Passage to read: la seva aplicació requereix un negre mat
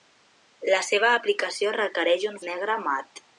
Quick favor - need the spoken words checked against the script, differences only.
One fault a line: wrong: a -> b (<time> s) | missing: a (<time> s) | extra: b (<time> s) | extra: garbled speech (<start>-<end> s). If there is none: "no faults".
no faults